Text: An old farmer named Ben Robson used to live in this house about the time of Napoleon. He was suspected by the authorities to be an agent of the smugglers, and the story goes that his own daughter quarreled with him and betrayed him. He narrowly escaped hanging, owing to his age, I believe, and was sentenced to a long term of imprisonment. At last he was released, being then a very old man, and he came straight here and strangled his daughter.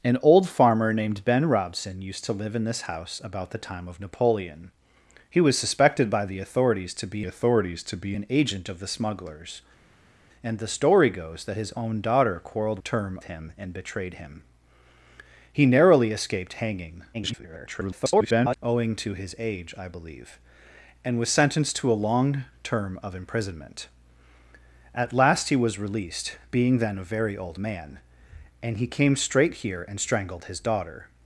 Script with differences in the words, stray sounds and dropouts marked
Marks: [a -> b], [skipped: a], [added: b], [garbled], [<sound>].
An old farmer named Ben Robson used to live in this house about the time of Napoleon. He was suspected by the authorities to be [added: authorities to be] an agent of the smugglers, and the story goes that his own daughter quarreled [with -> term] him and betrayed him. He narrowly escaped hanging, [garbled] owing to his age, I believe, and was sentenced to a long term of imprisonment. At last he was released, being then a very old man, and he came straight here and strangled his daughter.